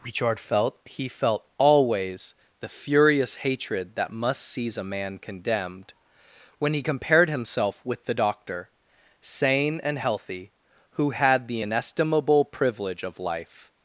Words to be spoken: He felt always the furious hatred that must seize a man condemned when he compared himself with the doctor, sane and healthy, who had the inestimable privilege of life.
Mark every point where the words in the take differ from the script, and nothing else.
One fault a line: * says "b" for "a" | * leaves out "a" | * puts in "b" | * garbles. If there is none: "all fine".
* puts in "richard felt"